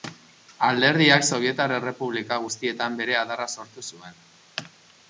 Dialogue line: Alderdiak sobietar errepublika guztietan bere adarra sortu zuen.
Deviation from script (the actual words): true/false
false